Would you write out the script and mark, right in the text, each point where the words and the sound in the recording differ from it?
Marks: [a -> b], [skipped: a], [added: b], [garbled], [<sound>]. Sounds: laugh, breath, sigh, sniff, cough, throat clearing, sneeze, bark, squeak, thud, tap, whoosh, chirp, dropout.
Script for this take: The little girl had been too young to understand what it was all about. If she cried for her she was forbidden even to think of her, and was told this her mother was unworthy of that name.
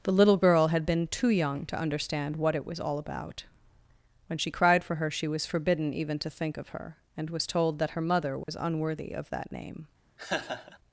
The little girl had been too young to understand what it was all about. [If -> When] she cried for her she was forbidden even to think of her, and was told [this -> that] her mother was [dropout] unworthy of that name. [laugh]